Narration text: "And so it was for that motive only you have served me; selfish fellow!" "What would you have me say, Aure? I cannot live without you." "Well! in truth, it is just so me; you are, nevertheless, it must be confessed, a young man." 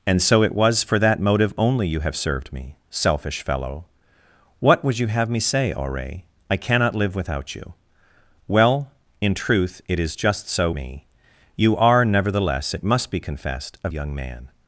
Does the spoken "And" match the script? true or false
true